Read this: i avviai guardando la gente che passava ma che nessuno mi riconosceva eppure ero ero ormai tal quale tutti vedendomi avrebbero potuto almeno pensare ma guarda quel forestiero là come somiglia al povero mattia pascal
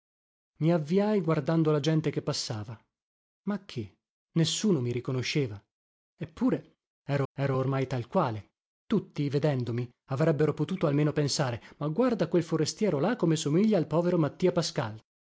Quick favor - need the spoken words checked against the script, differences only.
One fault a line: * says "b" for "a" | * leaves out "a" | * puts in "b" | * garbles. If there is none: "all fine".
all fine